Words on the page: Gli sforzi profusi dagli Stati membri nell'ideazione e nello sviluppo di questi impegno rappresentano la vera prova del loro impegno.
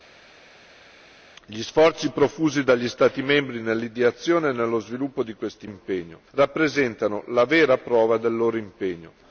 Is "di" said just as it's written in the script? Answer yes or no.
yes